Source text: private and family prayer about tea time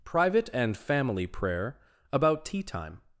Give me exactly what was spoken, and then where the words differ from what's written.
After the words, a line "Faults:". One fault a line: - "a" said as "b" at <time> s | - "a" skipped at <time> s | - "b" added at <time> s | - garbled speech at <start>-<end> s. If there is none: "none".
private and family prayer about tea time
Faults:
none